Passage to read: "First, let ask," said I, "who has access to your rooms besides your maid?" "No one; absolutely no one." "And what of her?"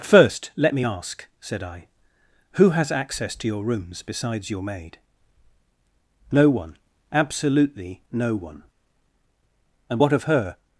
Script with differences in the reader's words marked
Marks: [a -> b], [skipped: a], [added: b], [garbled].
"First, let [added: me] ask," said I, "who has access to your rooms besides your maid?" "No one; absolutely no one." "And what of her?"